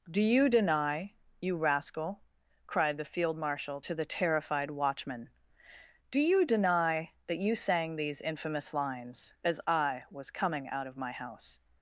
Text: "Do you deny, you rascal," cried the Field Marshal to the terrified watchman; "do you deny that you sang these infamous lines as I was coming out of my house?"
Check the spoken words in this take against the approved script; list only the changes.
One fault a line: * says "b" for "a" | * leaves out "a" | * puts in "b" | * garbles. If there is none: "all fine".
all fine